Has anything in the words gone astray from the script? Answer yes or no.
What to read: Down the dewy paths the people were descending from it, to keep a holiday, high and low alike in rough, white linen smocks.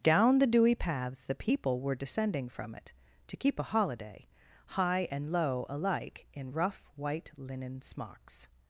no